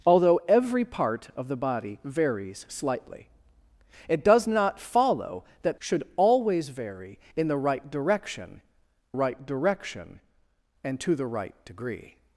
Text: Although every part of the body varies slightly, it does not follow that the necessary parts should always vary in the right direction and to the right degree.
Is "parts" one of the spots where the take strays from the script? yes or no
yes